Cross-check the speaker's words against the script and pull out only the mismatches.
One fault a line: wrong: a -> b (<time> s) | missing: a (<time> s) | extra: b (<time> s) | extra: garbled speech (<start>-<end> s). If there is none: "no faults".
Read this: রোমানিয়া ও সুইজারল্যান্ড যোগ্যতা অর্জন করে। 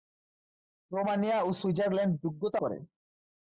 missing: অর্জন (2.6 s)